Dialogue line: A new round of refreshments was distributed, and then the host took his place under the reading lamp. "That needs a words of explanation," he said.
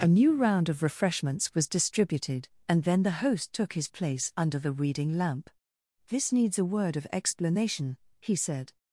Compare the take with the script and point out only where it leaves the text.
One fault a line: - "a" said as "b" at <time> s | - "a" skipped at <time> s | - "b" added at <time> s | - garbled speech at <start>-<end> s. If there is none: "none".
- "That" said as "This" at 6.1 s
- "words" said as "word" at 6.6 s